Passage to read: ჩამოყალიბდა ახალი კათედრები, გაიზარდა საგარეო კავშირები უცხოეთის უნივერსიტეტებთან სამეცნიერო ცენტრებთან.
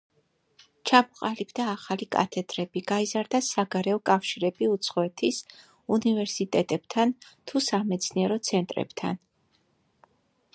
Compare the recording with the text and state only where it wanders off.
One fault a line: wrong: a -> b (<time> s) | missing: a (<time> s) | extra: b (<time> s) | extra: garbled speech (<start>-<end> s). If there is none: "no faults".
extra: თუ (7.5 s)